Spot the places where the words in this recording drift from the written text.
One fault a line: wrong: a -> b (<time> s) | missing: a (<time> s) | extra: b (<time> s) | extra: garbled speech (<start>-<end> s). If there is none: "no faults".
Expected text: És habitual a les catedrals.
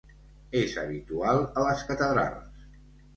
no faults